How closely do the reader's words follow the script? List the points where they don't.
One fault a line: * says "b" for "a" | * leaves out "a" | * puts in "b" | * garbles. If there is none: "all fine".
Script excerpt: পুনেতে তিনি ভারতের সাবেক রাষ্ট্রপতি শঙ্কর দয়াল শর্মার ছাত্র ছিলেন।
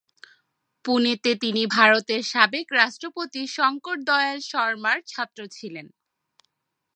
all fine